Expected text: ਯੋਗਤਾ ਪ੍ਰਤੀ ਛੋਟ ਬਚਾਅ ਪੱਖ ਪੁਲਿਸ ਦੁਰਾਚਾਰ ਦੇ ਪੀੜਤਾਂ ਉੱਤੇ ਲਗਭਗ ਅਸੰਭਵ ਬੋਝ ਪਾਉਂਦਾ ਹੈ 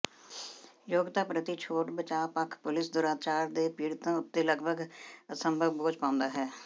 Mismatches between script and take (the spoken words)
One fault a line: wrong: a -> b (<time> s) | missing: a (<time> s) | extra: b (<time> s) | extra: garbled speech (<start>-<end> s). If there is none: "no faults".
no faults